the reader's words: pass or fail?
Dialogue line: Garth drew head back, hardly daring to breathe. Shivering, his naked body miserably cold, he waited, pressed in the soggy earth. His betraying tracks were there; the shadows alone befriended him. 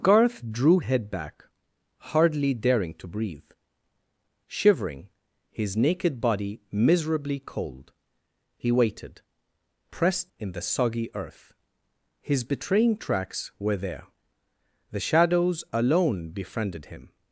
pass